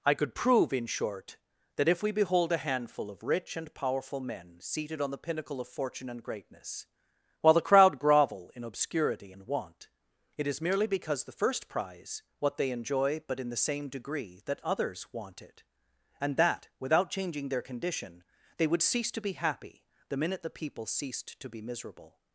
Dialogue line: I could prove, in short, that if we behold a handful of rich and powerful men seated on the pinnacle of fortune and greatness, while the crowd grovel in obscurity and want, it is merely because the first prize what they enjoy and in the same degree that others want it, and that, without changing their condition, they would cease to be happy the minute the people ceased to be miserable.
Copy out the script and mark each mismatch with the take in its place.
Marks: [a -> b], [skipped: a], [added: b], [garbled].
I could prove, in short, that if we behold a handful of rich and powerful men seated on the pinnacle of fortune and greatness, while the crowd grovel in obscurity and want, it is merely because the first prize what they enjoy [and -> but] in the same degree that others want it, and that, without changing their condition, they would cease to be happy the minute the people ceased to be miserable.